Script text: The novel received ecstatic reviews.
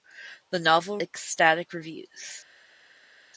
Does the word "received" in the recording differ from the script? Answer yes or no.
yes